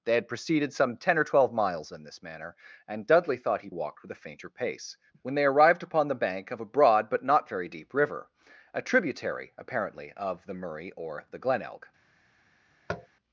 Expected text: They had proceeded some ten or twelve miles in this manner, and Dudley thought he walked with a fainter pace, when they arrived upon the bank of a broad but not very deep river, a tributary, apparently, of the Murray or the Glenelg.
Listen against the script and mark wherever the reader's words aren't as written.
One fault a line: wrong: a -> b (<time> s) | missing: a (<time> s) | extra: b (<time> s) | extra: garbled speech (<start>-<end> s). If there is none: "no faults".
no faults